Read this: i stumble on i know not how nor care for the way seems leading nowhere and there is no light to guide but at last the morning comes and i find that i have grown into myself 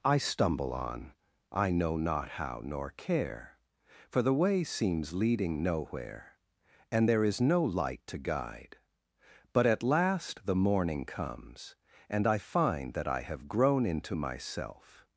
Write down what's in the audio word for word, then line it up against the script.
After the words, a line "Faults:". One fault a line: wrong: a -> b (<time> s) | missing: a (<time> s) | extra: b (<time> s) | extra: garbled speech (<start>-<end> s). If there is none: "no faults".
i stumble on i know not how nor care for the way seems leading nowhere and there is no light to guide but at last the morning comes and i find that i have grown into myself
Faults:
no faults